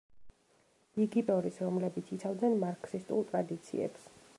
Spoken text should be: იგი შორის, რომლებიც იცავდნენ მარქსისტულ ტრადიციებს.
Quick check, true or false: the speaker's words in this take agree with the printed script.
true